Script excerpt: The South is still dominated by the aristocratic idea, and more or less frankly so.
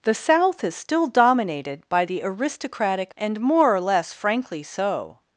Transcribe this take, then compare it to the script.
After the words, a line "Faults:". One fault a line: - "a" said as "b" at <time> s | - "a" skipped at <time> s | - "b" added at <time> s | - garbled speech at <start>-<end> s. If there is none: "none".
The South is still dominated by the aristocratic and more or less frankly so.
Faults:
- "idea" skipped at 3.1 s